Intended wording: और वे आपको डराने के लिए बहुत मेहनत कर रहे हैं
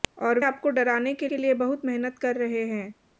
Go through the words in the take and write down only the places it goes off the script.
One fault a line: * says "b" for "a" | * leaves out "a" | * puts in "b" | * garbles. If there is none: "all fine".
* leaves out "वे"
* puts in "के"